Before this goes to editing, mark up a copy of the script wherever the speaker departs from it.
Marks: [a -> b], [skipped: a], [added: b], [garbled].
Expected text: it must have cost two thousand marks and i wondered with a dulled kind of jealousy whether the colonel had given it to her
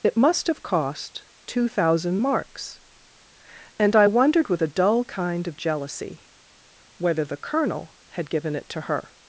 it must have cost two thousand marks and i wondered with a [dulled -> dull] kind of jealousy whether the colonel had given it to her